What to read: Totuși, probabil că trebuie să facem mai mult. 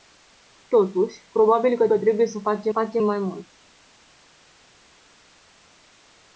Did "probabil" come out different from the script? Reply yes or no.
no